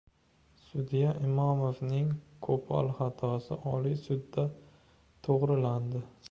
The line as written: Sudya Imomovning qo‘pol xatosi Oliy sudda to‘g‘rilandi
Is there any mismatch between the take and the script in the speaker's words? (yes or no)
no